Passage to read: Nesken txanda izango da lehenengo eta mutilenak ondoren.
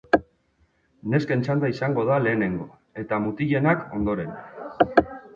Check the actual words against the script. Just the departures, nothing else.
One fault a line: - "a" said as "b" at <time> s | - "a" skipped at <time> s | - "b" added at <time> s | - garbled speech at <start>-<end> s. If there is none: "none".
none